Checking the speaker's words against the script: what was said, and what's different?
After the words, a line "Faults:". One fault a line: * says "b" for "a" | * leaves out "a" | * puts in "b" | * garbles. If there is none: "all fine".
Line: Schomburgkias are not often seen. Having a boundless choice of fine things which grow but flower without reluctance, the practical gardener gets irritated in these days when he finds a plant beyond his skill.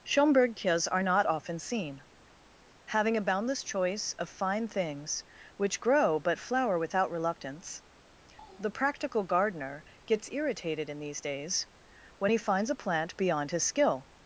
Schomburgkias are not often seen. Having a boundless choice of fine things which grow but flower without reluctance, the practical gardener gets irritated in these days when he finds a plant beyond his skill.
Faults:
all fine